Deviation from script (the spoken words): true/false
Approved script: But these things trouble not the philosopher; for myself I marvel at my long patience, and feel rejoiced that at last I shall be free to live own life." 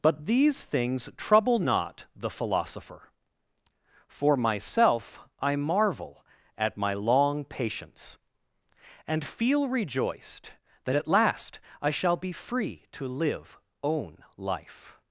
false